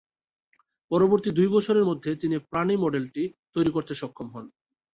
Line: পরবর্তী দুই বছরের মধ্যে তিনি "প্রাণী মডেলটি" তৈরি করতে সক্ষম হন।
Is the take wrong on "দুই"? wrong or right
right